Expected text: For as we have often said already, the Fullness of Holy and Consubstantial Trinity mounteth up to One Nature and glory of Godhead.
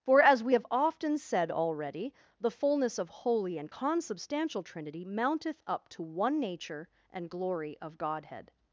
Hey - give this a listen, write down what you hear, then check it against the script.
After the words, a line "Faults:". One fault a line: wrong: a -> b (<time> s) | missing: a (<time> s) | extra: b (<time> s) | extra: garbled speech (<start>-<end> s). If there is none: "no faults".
For as we have often said already, the Fullness of Holy and Consubstantial Trinity mounteth up to One Nature and glory of Godhead.
Faults:
no faults